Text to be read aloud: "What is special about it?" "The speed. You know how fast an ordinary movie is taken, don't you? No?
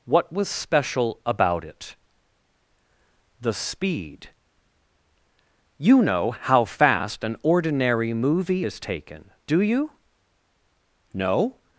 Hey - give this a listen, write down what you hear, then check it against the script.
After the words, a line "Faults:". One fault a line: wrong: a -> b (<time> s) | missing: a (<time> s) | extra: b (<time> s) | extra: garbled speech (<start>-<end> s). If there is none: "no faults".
"What was special about it?" "The speed. You know how fast an ordinary movie is taken, do you? No?
Faults:
wrong: is -> was (0.3 s)
wrong: don't -> do (9.5 s)